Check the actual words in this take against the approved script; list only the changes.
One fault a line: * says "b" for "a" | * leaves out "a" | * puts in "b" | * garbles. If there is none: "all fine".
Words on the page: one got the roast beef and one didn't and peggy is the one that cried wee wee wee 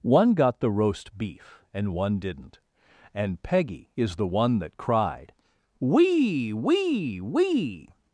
all fine